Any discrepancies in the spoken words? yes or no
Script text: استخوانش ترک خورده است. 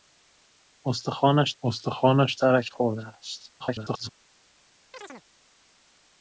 yes